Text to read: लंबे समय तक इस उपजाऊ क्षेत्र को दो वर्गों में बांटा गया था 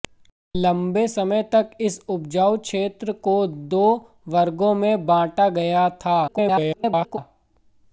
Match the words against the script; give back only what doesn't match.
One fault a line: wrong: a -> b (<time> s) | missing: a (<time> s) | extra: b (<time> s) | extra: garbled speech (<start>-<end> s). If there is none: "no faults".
extra: garbled speech (6.3-7.2 s)